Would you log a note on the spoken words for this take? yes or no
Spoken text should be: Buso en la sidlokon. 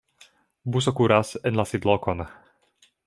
yes